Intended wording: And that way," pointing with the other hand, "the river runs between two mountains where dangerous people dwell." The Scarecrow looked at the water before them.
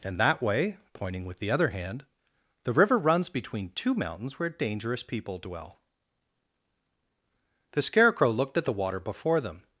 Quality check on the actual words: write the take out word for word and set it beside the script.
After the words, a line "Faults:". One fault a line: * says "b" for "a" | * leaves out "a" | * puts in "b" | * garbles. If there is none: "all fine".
And that way," pointing with the other hand, "the river runs between two mountains where dangerous people dwell." The Scarecrow looked at the water before them.
Faults:
all fine